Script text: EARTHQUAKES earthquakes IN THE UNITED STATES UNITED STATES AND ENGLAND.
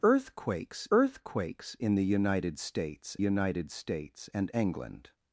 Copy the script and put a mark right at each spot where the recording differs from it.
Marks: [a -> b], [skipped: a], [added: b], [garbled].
EARTHQUAKES earthquakes IN THE UNITED STATES UNITED STATES AND ENGLAND.